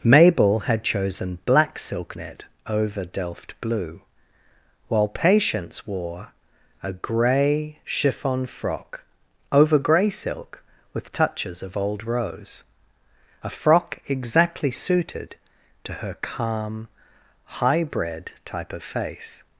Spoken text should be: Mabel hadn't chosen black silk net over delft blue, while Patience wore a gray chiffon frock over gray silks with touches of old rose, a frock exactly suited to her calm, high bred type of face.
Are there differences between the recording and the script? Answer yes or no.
yes